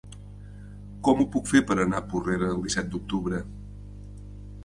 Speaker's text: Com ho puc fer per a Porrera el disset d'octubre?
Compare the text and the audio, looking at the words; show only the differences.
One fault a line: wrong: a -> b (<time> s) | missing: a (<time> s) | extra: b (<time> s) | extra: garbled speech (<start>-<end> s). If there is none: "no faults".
extra: anar (1.8 s)